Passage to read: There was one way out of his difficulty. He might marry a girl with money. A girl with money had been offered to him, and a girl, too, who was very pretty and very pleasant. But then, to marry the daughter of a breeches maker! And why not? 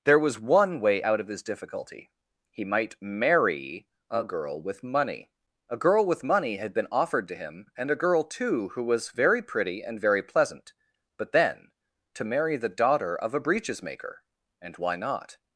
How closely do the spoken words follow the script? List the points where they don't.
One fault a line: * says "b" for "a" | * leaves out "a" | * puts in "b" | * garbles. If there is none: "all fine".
all fine